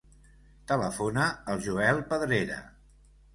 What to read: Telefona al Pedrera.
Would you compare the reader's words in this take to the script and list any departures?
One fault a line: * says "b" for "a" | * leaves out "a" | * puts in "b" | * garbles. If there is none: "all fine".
* puts in "Joel"